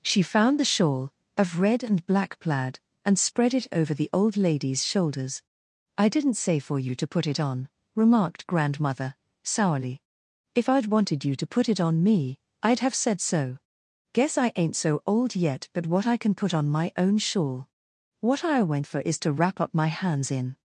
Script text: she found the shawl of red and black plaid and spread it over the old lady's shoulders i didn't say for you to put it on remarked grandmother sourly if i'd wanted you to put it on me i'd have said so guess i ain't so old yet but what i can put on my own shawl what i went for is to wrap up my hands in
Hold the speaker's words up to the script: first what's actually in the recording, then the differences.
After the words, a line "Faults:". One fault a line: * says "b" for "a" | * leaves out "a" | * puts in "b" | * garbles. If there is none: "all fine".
she found the shawl of red and black plaid and spread it over the old lady's shoulders i didn't say for you to put it on remarked grandmother sourly if i'd wanted you to put it on me i'd have said so guess i ain't so old yet but what i can put on my own shawl what i went for is to wrap up my hands in
Faults:
all fine